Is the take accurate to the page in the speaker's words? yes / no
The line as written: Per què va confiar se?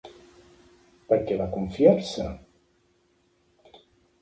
yes